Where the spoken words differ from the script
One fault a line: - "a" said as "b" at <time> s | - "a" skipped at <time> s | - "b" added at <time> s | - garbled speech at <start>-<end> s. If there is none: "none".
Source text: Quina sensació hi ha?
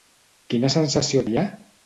none